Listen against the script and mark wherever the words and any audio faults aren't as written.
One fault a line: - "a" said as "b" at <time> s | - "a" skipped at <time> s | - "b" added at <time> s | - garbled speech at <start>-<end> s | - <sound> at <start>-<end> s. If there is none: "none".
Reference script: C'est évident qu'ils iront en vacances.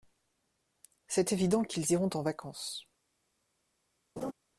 - laugh at 4.2-4.3 s